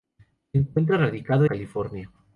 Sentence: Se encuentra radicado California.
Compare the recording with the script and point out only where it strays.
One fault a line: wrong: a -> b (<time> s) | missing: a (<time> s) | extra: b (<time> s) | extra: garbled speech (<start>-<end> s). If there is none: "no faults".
no faults